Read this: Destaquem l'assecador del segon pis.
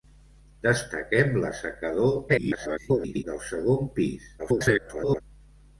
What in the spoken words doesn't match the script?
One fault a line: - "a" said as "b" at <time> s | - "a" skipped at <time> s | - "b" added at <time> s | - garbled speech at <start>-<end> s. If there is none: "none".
- garbled speech at 2.3-3.2 s
- garbled speech at 4.4-5.2 s